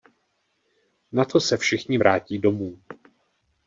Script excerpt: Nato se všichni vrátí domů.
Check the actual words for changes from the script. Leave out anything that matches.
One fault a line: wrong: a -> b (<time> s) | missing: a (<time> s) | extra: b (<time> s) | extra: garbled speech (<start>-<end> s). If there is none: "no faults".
no faults